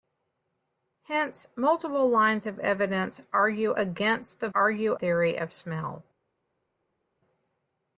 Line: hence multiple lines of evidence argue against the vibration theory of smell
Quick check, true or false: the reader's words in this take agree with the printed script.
false